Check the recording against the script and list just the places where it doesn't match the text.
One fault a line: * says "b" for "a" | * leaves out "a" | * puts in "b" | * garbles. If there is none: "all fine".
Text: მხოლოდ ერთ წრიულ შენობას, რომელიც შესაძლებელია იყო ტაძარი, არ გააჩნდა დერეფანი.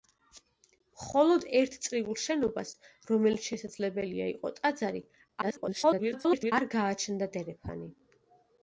* garbles